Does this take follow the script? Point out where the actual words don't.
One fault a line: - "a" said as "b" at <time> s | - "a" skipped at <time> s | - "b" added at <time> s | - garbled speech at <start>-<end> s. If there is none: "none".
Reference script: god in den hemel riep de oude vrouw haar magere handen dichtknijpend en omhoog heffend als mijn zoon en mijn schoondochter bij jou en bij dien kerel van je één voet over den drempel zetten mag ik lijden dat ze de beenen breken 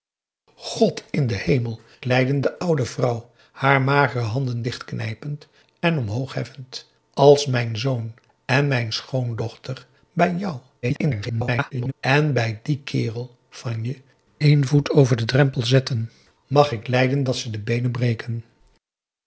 - "riep" said as "lijden" at 2.0 s
- garbled speech at 10.8-11.9 s